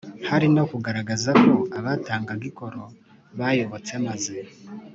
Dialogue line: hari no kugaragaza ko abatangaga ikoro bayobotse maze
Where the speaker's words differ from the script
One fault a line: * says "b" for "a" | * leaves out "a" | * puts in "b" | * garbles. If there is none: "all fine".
all fine